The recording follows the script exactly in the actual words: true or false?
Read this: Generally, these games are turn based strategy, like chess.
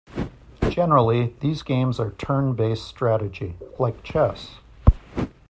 true